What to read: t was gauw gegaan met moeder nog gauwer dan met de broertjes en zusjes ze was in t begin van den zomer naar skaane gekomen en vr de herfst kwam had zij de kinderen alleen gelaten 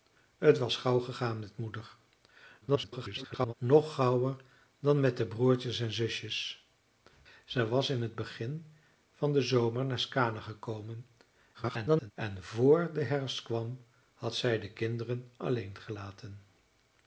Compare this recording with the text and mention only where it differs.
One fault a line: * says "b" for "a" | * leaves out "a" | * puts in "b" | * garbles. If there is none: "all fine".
* garbles
* garbles